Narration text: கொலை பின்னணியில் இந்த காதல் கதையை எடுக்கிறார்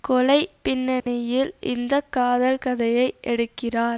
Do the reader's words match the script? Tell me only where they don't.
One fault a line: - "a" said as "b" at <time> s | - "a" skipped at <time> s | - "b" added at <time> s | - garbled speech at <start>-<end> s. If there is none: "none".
none